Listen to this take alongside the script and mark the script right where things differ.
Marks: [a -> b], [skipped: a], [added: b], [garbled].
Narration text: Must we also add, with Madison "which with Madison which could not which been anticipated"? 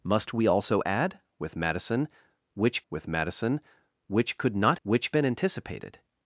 Must we also add, with Madison "which with Madison which could not which been anticipated"?